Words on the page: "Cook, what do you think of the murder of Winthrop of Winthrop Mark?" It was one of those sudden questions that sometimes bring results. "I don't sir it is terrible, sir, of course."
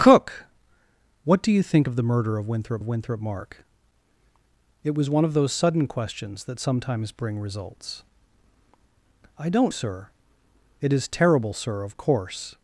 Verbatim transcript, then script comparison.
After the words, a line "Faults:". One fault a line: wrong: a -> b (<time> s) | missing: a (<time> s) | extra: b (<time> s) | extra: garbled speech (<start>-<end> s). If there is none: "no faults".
"Cook, what do you think of the murder of Winthrop of Winthrop Mark?" It was one of those sudden questions that sometimes bring results. "I don't sir it is terrible, sir, of course."
Faults:
no faults